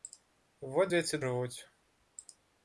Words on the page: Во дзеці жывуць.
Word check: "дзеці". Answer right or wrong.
right